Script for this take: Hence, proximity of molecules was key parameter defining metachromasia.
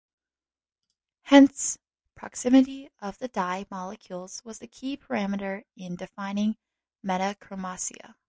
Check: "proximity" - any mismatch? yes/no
no